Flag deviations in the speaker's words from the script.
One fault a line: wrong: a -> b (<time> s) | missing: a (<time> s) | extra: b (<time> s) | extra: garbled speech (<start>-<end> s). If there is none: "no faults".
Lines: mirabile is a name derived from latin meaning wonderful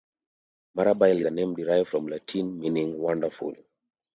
missing: is (1.2 s)